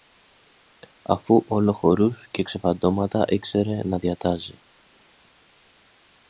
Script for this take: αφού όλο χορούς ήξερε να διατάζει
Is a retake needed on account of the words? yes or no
yes